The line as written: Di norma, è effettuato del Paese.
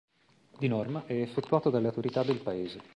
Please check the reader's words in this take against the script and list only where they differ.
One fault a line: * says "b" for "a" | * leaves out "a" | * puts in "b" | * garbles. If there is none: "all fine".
* puts in "dalle autorità"